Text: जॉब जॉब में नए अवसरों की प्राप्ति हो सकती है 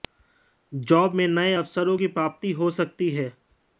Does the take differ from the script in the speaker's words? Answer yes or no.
yes